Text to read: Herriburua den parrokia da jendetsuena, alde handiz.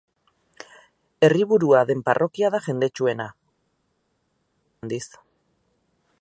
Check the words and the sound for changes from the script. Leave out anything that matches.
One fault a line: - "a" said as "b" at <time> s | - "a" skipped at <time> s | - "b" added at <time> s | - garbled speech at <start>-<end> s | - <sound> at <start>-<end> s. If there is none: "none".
- "alde" skipped at 3.3 s